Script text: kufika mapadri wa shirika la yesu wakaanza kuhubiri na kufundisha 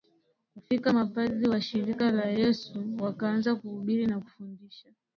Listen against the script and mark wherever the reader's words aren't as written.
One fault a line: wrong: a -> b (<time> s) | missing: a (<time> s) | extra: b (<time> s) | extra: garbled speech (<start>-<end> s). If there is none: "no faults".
no faults